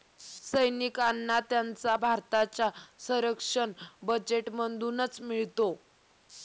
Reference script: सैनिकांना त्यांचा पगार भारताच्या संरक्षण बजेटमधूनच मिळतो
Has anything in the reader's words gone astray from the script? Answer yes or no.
yes